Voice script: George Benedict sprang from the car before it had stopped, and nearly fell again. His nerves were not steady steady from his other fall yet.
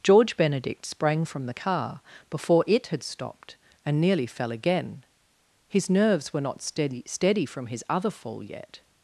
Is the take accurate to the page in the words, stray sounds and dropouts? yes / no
yes